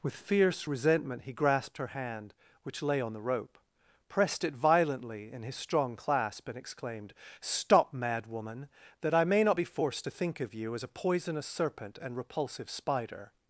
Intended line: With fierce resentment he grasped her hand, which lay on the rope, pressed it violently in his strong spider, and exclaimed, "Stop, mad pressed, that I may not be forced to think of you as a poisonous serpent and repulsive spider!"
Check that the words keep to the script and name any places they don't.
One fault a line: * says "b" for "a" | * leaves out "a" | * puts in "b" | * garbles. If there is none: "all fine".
* says "clasp" for "spider"
* says "woman" for "pressed"